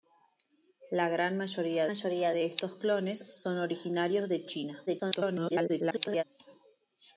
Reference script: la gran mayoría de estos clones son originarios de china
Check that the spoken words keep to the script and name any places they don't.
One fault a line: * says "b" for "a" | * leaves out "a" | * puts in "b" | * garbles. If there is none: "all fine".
* puts in "mayoría"
* garbles